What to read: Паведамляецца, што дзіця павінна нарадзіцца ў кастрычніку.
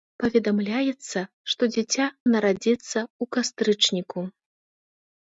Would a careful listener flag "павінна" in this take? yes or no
yes